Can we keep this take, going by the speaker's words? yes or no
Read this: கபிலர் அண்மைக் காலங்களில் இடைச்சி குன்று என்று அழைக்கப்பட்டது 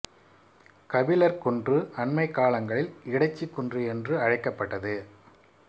no